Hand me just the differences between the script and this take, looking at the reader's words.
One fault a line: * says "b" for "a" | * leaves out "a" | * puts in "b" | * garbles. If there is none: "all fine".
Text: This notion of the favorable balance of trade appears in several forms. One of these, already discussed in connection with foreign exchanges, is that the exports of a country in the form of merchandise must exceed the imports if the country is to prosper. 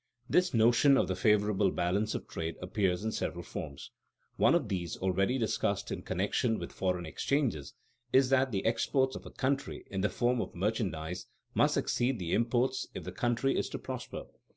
all fine